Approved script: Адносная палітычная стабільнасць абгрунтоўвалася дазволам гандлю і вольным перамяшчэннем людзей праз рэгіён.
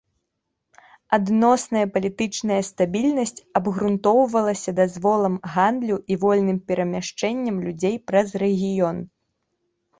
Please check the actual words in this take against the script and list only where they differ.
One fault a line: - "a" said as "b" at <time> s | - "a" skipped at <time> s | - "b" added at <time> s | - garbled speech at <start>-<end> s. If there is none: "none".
none